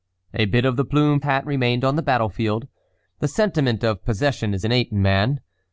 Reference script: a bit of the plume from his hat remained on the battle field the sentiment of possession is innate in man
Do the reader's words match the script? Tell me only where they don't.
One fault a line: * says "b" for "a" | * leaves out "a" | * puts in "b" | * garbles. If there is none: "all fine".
* leaves out "from his"